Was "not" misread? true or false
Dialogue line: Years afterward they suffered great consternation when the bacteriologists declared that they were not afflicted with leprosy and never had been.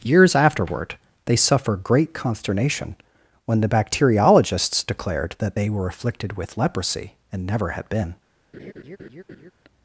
true